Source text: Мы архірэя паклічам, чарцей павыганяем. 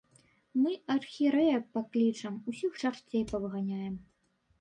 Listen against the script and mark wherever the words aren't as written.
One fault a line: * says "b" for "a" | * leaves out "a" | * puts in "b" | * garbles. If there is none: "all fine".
* puts in "усіх"